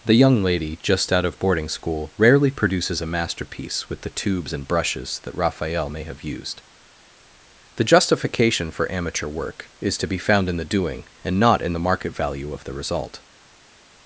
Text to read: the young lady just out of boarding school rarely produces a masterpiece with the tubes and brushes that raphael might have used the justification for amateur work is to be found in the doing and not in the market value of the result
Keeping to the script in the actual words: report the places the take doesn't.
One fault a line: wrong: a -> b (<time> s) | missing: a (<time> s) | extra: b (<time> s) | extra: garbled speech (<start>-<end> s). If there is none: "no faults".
wrong: might -> may (5.9 s)